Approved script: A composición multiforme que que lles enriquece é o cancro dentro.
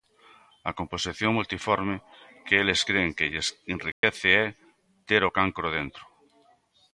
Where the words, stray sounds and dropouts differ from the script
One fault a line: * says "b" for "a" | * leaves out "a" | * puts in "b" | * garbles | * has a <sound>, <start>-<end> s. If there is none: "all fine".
* puts in "eles cren"
* has a dropout, 3.9-4.0 s
* puts in "ter"